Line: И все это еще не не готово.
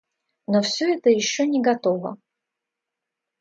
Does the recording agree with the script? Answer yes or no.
no